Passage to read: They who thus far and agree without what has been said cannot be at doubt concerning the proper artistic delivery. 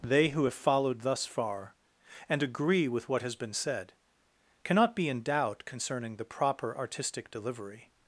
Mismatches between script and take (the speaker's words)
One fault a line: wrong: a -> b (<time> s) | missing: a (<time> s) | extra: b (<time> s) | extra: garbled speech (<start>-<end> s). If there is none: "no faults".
extra: have followed (0.4 s)
wrong: without -> with (2.9 s)
wrong: at -> in (5.1 s)